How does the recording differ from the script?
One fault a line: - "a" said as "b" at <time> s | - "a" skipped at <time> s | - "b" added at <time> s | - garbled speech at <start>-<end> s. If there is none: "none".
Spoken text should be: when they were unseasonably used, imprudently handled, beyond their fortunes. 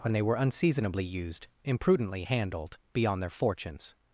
none